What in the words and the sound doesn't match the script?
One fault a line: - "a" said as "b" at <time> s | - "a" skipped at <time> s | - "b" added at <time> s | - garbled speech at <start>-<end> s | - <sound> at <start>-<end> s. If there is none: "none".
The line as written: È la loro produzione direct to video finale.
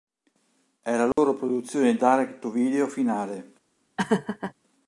- dropout at 1.1-1.2 s
- laugh at 4.0-4.5 s